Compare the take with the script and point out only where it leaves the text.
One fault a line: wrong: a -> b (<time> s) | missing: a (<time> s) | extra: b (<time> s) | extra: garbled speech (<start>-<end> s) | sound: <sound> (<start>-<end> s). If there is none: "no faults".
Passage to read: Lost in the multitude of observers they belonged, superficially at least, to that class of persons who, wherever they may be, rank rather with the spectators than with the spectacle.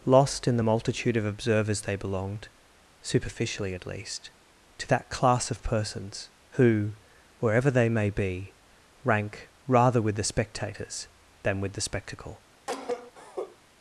sound: cough (12.7-13.6 s)